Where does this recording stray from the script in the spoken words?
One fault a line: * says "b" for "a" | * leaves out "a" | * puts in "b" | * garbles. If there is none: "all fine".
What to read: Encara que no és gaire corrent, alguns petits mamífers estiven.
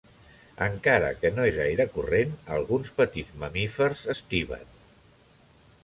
all fine